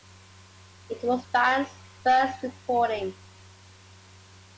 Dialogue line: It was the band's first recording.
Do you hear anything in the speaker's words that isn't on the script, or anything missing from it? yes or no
yes